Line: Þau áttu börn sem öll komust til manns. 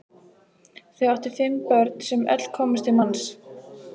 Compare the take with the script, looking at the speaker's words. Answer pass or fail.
fail